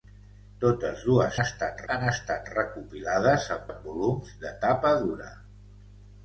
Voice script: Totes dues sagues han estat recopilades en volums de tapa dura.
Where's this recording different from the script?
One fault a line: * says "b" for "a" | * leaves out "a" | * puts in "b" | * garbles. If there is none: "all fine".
* says "estat" for "sagues"
* puts in "en"